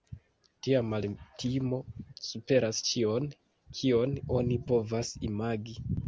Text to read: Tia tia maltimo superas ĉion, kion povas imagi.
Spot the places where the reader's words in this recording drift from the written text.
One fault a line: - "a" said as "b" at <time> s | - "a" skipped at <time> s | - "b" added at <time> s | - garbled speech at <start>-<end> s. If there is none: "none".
- "tia" skipped at 0.8 s
- "oni" added at 4.4 s